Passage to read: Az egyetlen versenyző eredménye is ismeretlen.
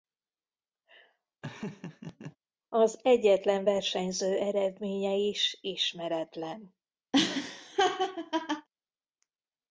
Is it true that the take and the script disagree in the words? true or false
false